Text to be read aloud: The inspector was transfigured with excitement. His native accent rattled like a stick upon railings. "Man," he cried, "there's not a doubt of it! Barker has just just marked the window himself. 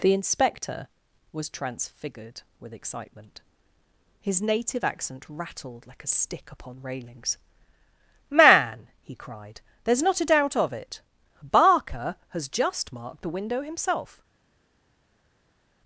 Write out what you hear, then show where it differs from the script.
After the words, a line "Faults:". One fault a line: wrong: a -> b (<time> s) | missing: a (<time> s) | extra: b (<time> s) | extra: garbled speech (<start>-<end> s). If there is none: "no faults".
The inspector was transfigured with excitement. His native accent rattled like a stick upon railings. "Man," he cried, "there's not a doubt of it! Barker has just marked the window himself.
Faults:
missing: just (12.9 s)